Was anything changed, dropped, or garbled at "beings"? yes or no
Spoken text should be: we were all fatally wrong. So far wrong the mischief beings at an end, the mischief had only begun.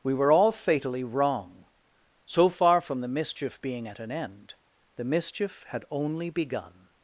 yes